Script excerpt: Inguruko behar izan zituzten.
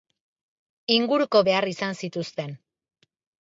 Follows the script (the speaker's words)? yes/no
yes